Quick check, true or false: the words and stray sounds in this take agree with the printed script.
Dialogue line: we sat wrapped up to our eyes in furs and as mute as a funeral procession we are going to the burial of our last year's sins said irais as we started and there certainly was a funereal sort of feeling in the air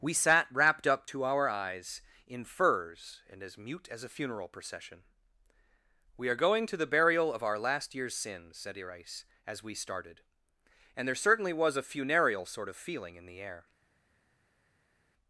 true